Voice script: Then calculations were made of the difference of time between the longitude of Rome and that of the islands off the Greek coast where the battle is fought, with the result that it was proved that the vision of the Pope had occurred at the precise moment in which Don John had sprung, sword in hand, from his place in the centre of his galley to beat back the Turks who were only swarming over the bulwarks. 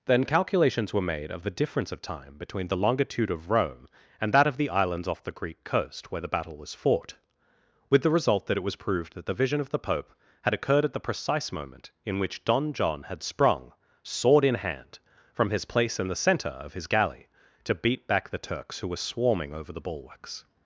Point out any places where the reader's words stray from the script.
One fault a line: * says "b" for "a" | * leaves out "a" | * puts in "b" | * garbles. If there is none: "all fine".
* says "was" for "is"
* leaves out "only"